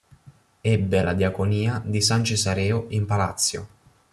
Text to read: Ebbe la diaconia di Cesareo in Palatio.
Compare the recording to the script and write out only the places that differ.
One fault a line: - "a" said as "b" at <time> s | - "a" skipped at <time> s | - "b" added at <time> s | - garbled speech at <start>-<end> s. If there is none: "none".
- "San" added at 2.0 s